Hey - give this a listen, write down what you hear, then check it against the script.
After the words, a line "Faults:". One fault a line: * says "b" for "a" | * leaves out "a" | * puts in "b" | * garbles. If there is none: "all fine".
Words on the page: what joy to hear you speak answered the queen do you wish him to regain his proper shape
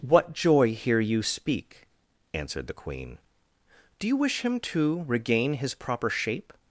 what joy hear you speak answered the queen do you wish him to regain his proper shape
Faults:
* leaves out "to"